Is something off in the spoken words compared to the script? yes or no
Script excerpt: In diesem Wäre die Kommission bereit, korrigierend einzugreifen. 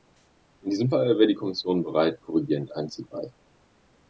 yes